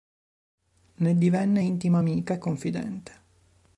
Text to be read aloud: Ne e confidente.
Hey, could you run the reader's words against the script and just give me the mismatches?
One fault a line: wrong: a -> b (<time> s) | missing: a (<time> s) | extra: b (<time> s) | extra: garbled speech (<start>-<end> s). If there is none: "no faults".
extra: divenne intima amica (1.2 s)